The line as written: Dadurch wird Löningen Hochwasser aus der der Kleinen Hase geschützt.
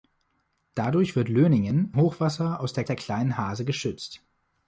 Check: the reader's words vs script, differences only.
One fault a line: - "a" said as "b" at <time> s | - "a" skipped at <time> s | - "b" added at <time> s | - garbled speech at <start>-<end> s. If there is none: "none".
none